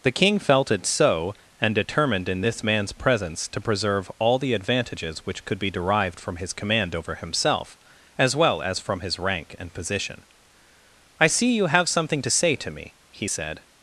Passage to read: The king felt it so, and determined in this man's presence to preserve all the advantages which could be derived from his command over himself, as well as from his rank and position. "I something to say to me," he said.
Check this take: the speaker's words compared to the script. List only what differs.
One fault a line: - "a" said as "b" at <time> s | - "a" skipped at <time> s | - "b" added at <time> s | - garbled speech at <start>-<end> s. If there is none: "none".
- "see you have" added at 11.3 s